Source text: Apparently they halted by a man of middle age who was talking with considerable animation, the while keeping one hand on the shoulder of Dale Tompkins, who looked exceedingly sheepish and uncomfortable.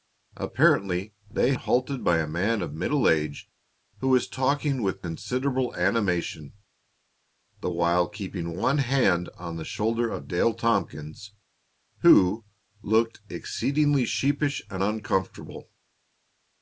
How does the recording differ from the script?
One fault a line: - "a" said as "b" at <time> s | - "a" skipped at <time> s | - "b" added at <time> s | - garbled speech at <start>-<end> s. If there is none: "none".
none